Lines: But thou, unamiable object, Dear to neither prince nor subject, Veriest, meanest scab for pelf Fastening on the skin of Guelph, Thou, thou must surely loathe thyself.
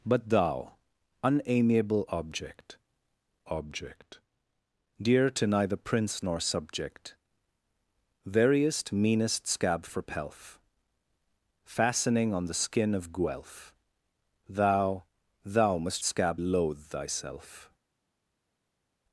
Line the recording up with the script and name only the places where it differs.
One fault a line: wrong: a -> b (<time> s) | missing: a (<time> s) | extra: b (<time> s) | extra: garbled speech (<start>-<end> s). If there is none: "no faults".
extra: object (3.5 s)
wrong: surely -> scab (16.0 s)